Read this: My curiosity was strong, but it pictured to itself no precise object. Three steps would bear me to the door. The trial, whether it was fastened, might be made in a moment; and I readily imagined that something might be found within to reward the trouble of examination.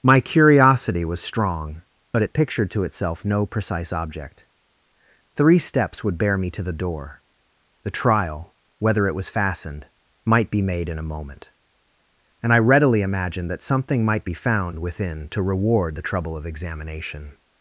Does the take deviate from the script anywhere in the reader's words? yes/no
no